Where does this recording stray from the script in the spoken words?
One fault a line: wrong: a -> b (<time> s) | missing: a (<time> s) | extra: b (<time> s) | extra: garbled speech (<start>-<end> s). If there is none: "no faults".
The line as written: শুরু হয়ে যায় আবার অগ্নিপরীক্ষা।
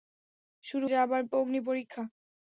missing: হয়ে (0.9 s)